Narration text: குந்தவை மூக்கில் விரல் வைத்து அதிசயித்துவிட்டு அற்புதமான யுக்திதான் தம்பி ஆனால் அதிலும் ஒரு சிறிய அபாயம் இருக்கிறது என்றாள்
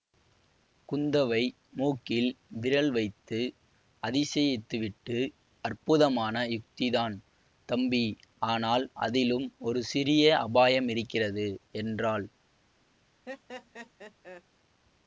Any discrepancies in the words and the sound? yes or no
yes